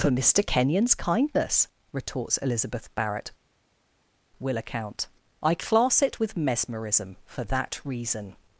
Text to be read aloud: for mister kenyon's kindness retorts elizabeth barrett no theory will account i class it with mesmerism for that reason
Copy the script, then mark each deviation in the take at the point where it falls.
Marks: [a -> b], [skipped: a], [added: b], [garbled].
for mister kenyon's kindness retorts elizabeth barrett [skipped: no theory] will account i class it with mesmerism for that reason